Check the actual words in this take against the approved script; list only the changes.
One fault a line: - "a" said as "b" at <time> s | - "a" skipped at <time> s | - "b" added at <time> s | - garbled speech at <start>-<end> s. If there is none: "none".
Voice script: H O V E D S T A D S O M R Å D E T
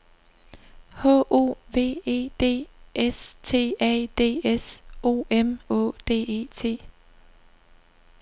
- "R" skipped at 5.6 s